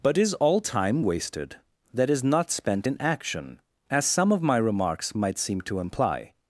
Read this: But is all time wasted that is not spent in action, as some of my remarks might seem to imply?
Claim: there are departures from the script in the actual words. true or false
false